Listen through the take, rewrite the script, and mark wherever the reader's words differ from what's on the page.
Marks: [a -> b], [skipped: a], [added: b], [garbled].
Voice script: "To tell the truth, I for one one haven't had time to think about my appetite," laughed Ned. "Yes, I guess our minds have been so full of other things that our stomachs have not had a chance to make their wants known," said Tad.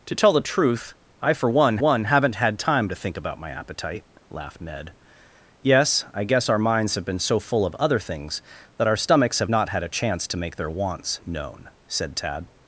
"To tell the truth, I for one one haven't had time to think about my appetite," laughed Ned. "Yes, I guess our minds have been so full of other things that our stomachs have not had a chance to make their wants known," said Tad.